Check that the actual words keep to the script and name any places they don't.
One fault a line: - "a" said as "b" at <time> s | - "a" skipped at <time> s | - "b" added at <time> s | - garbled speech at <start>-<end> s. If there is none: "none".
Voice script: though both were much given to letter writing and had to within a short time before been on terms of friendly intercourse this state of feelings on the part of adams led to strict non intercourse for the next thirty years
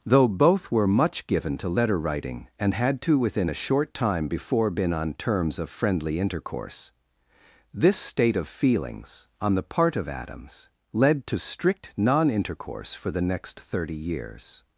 none